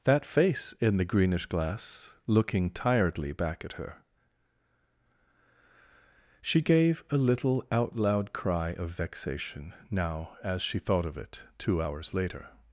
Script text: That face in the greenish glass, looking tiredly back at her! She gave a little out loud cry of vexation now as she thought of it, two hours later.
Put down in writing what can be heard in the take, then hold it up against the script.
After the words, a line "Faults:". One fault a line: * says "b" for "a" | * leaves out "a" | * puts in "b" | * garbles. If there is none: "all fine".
That face in the greenish glass, looking tiredly back at her! She gave a little out loud cry of vexation now as she thought of it, two hours later.
Faults:
all fine